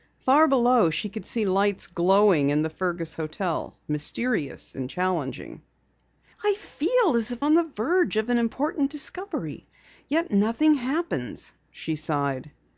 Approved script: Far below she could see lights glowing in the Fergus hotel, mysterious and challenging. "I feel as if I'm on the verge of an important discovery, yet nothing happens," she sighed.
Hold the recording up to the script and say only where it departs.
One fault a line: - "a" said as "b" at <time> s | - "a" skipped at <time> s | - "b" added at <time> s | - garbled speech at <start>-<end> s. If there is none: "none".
- "I'm" skipped at 7.5 s